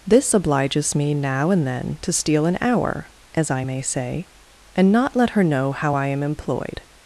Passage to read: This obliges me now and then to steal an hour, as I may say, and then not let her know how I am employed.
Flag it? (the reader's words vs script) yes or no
yes